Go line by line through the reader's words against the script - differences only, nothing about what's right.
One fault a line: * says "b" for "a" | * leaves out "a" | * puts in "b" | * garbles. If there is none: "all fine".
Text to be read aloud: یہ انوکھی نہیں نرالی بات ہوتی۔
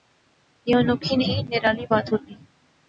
all fine